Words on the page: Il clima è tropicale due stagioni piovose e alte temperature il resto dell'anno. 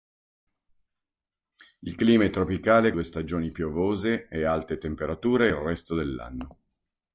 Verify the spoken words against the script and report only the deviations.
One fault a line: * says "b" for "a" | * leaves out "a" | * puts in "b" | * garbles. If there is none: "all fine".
all fine